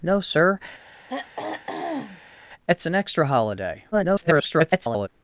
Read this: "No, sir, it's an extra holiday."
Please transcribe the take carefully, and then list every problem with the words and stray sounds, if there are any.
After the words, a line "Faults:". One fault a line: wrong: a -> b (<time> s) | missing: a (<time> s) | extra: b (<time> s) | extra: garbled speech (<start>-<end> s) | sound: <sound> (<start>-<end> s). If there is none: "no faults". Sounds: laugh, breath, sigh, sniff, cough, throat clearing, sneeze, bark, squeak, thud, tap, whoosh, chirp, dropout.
"No, sir, it's an extra holiday." [garbled]
Faults:
sound: throat clearing (0.9-2.4 s)
extra: garbled speech (3.9-5.1 s)